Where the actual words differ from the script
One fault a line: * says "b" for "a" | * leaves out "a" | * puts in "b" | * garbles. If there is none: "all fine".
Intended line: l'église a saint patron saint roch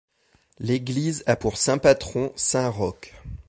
* puts in "pour"